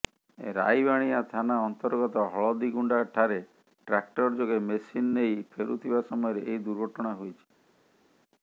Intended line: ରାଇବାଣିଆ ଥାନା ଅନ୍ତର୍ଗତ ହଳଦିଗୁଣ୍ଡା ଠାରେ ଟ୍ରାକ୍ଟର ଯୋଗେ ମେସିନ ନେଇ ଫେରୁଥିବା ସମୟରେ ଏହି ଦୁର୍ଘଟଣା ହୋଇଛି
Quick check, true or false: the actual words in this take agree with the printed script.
true